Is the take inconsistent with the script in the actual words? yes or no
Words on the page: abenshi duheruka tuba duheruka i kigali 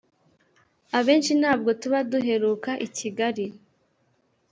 yes